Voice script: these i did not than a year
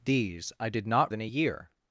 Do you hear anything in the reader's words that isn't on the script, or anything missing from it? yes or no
no